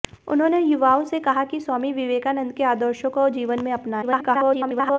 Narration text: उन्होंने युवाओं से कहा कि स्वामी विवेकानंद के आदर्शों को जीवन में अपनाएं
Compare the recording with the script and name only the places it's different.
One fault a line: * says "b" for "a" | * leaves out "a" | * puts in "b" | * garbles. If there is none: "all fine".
* garbles